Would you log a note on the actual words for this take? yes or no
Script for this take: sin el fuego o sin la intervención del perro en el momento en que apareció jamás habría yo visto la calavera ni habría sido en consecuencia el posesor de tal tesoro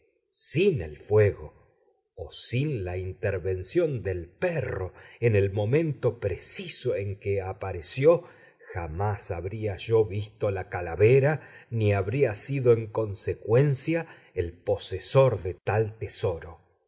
yes